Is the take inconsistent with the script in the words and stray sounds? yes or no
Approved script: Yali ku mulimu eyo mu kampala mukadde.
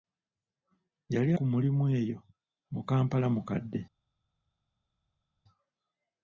no